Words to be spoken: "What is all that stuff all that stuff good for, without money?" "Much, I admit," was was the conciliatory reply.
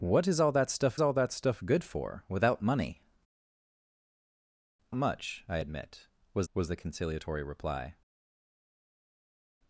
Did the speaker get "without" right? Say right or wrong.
right